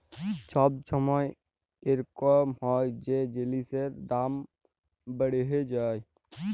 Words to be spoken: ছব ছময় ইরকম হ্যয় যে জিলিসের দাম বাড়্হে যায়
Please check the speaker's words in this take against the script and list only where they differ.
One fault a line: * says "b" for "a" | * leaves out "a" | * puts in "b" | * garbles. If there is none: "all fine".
all fine